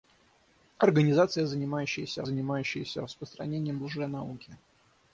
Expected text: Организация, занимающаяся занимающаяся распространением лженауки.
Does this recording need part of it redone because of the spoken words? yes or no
no